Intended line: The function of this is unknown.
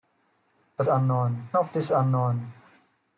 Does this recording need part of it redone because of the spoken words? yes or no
yes